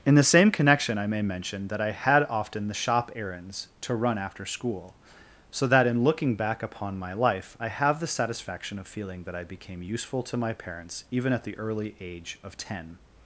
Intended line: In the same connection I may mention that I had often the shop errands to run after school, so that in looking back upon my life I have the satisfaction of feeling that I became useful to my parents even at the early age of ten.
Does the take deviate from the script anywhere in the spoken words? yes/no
no